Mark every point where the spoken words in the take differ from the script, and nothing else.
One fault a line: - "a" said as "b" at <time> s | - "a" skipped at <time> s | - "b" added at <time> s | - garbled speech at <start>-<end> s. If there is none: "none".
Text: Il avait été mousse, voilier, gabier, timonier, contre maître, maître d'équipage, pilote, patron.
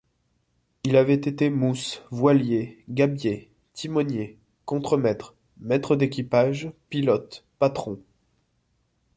none